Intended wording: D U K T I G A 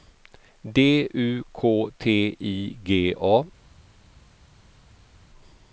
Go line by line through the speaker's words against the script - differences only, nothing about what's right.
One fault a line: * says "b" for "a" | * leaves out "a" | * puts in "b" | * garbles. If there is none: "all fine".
all fine